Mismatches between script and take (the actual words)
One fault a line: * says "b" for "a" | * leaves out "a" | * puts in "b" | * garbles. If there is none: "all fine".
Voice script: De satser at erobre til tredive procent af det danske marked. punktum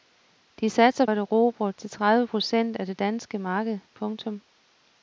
all fine